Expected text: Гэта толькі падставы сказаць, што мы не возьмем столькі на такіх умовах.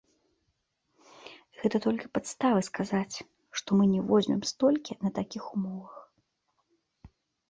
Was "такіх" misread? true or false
false